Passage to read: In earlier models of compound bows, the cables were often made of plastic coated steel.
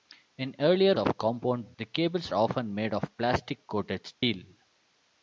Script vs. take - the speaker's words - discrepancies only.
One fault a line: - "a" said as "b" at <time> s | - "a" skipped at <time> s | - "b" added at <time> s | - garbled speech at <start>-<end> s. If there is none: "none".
- "models" skipped at 1.0 s
- "bows" skipped at 1.7 s
- "were" skipped at 2.3 s